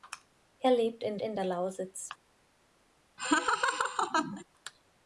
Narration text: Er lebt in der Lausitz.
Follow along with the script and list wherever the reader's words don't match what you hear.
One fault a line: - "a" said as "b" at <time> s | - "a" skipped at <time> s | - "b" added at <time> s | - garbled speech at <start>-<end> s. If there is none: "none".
- "in" added at 1.2 s